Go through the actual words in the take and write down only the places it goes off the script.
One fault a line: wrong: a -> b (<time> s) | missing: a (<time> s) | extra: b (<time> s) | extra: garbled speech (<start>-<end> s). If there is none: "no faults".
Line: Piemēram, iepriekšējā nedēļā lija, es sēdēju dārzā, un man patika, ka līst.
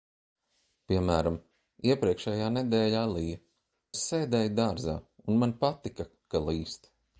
no faults